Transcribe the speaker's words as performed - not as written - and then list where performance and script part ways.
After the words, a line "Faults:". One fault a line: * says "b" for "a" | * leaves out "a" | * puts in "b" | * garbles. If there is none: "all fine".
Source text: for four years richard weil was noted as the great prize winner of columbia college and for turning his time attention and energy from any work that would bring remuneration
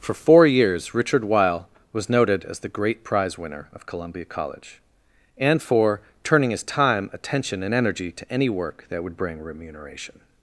for four years richard weil was noted as the great prize winner of columbia college and for turning his time attention and energy to any work that would bring remuneration
Faults:
* says "to" for "from"